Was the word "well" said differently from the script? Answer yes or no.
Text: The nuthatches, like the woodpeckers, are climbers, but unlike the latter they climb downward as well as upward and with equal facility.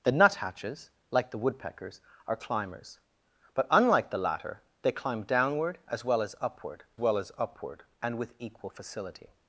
no